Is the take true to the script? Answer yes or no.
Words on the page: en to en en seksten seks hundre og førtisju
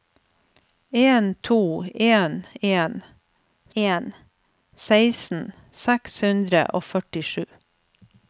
no